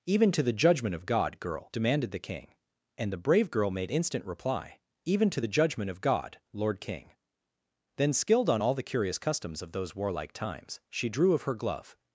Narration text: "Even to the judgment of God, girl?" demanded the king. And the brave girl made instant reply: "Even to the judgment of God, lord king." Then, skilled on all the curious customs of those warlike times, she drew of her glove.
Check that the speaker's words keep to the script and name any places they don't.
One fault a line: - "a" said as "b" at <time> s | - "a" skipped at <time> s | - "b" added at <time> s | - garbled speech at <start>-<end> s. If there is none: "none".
none